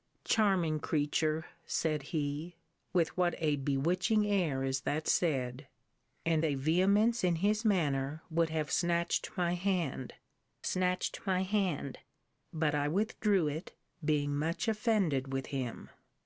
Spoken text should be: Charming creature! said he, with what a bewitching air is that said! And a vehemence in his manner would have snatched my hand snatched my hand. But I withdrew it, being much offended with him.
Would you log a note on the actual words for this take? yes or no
no